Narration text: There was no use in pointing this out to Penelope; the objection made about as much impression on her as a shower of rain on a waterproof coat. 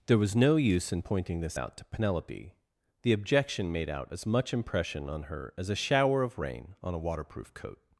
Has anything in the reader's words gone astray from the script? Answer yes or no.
yes